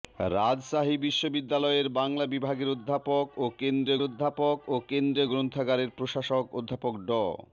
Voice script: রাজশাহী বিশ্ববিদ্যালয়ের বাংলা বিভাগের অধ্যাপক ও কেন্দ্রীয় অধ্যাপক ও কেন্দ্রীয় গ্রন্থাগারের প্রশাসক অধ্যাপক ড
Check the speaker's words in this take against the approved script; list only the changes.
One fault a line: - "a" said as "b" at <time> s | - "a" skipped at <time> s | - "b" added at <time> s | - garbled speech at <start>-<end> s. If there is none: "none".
none